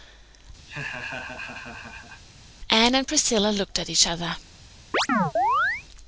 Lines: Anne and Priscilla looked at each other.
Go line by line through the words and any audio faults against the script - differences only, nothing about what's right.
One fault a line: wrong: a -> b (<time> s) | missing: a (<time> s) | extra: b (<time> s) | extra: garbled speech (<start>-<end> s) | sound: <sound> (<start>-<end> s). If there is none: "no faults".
sound: laugh (0.7-2.2 s)
sound: chirp (4.9-5.8 s)